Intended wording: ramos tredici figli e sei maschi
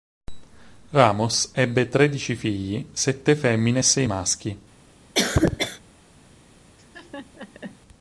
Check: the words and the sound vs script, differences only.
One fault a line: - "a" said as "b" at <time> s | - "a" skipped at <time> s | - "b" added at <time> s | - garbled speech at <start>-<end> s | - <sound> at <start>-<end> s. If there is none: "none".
- "ebbe" added at 1.5 s
- "sette femmine" added at 2.9 s
- cough at 5.1-5.8 s
- laugh at 6.8-7.8 s